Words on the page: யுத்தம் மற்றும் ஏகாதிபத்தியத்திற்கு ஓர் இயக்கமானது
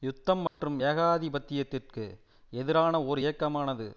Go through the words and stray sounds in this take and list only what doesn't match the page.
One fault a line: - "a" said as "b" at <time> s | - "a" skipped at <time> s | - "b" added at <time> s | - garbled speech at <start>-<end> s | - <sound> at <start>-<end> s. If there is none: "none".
- dropout at 0.5-0.6 s
- "எதிரான" added at 2.5 s